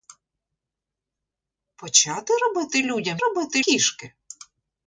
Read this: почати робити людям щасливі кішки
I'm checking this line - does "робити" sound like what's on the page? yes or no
yes